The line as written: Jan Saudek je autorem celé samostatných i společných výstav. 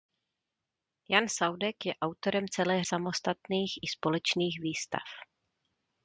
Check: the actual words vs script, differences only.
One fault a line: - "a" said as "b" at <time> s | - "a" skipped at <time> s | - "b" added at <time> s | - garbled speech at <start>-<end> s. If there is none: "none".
none